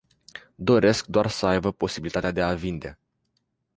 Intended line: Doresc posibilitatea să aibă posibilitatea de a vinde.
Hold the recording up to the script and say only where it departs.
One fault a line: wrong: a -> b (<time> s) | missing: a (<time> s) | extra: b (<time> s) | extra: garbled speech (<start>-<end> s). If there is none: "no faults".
wrong: posibilitatea -> doar (1.1 s)